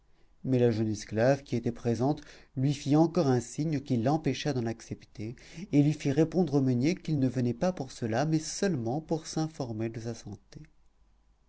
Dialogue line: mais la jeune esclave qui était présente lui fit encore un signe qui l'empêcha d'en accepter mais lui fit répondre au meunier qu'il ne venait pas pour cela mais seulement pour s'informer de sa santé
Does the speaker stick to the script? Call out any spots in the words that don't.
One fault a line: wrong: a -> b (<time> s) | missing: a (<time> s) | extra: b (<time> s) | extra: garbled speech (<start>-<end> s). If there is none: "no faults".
wrong: mais -> et (5.7 s)